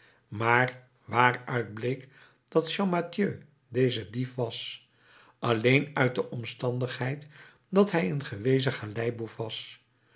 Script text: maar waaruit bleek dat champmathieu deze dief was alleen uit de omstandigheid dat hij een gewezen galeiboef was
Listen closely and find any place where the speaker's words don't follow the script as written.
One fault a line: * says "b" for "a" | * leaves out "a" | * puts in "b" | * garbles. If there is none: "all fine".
all fine